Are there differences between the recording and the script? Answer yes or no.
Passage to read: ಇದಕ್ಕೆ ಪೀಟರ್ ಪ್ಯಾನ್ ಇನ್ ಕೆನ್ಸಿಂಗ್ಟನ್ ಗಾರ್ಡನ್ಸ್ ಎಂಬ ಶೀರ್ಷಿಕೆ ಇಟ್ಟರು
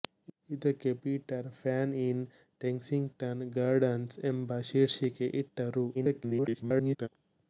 yes